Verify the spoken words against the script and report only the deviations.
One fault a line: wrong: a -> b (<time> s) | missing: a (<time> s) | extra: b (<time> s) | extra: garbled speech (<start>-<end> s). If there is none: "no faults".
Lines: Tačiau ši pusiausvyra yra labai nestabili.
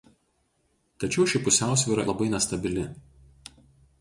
missing: yra (2.1 s)